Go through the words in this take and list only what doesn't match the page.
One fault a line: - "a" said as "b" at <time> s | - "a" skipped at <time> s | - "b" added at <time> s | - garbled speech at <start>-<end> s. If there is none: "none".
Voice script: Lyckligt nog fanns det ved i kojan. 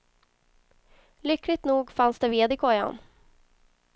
none